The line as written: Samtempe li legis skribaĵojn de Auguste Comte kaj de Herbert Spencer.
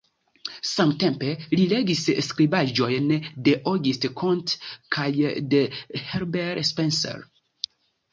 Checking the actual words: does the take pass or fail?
pass